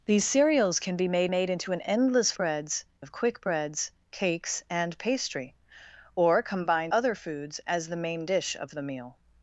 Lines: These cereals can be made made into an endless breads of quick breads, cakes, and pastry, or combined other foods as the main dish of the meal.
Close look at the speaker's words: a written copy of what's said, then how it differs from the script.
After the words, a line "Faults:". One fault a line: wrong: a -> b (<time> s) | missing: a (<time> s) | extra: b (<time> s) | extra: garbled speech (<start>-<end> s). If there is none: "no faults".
These cereals can be made made into an endless breads of quick breads, cakes, and pastry, or combined other foods as the main dish of the meal.
Faults:
no faults